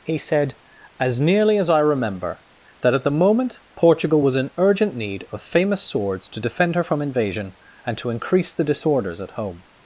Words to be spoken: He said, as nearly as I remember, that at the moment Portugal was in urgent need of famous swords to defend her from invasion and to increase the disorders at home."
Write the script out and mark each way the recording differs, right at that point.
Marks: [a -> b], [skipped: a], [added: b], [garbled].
He said, as nearly as I remember, that at the moment Portugal was in urgent need of famous swords to defend her from invasion and to increase the disorders at home."